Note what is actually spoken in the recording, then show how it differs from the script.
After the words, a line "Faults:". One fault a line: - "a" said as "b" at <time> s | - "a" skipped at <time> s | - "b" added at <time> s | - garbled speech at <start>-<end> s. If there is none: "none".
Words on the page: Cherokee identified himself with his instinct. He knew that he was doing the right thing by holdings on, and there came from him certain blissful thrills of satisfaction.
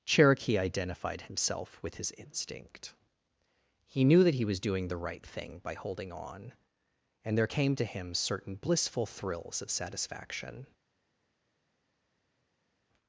Cherokee identified himself with his instinct. He knew that he was doing the right thing by holding on, and there came to him certain blissful thrills of satisfaction.
Faults:
- "holdings" said as "holding" at 5.7 s
- "from" said as "to" at 7.7 s